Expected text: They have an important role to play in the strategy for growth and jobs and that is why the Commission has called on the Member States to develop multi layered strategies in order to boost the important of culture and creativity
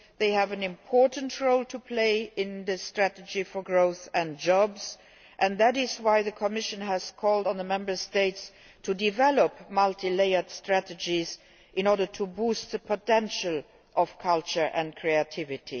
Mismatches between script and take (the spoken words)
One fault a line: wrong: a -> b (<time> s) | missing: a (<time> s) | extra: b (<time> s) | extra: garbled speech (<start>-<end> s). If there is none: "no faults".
wrong: important -> potential (12.8 s)